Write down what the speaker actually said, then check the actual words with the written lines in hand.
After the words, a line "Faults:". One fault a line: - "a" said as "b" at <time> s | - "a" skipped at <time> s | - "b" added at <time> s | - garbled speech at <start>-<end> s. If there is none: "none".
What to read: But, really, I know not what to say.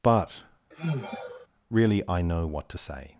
But, really, I know what to say.
Faults:
- "not" skipped at 2.5 s